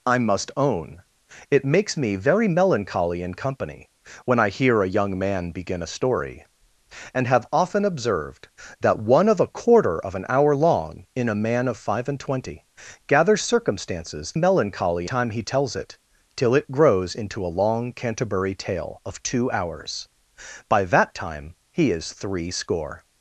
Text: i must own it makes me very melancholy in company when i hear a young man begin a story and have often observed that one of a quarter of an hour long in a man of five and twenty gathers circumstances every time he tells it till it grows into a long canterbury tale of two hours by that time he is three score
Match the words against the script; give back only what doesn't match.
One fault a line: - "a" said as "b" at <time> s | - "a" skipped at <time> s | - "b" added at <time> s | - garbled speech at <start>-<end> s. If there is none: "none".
- "every" said as "melancholy" at 14.3 s